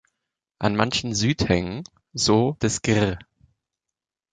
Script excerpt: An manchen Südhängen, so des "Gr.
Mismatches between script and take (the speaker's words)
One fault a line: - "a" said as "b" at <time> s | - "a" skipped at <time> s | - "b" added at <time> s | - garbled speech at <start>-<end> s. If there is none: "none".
none